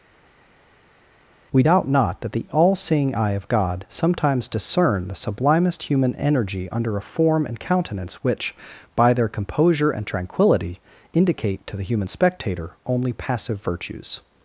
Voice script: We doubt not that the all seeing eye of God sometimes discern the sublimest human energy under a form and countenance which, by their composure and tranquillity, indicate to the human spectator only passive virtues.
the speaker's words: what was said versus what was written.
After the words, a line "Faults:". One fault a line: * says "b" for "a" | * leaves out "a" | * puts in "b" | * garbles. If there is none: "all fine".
We doubt not that the all seeing eye of God sometimes discern the sublimest human energy under a form and countenance which, by their composure and tranquillity, indicate to the human spectator only passive virtues.
Faults:
all fine